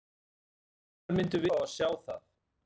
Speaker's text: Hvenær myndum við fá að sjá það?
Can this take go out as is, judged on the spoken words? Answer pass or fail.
fail